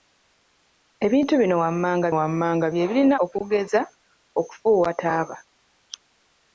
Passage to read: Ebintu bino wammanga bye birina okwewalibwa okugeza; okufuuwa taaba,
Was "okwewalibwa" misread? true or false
true